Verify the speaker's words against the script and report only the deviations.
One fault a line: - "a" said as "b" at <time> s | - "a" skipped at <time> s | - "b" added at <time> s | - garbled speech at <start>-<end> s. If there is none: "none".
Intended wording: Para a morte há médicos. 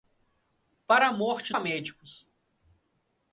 none